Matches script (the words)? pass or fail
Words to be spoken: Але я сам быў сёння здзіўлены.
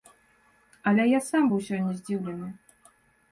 pass